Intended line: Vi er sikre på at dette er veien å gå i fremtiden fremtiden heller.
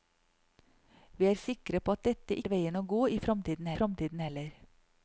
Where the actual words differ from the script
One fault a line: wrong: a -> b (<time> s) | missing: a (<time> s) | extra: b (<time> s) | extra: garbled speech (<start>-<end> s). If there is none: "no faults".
no faults